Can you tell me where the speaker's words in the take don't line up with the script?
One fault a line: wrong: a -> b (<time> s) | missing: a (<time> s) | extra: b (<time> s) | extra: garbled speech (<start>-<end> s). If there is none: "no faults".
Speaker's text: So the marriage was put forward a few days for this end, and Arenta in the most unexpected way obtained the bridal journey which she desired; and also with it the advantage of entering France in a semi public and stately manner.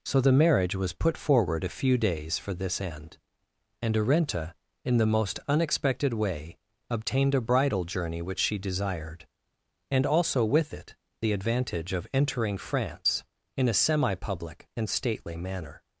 wrong: the -> a (7.3 s)